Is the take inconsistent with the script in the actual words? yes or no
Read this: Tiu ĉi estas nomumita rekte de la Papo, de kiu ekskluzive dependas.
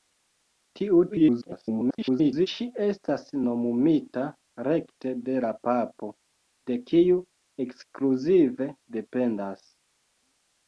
yes